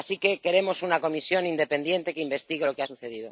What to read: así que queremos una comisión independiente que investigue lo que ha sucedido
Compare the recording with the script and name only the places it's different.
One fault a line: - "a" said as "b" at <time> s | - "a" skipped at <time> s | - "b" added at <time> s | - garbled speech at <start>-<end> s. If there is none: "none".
none